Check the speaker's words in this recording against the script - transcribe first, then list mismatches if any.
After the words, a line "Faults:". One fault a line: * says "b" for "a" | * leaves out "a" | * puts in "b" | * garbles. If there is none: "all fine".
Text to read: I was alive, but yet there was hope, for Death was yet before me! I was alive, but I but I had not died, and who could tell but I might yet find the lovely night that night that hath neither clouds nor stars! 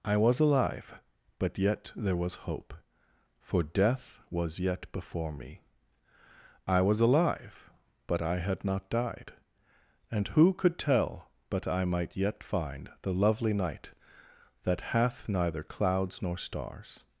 I was alive, but yet there was hope, for Death was yet before me! I was alive, but I had not died, and who could tell but I might yet find the lovely night that hath neither clouds nor stars!
Faults:
* leaves out "but I"
* leaves out "night that"